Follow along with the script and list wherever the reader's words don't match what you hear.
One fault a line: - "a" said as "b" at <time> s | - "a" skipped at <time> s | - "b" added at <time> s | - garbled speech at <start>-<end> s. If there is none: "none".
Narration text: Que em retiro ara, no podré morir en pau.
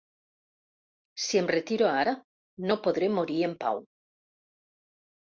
- "Que" said as "Si" at 1.2 s